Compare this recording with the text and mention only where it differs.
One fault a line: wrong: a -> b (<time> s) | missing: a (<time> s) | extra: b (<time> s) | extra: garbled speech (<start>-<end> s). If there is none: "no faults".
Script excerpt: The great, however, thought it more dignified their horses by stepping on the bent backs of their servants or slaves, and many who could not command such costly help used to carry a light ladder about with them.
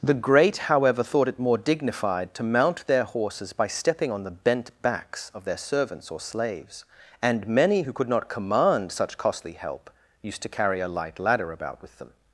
extra: to mount (2.3 s)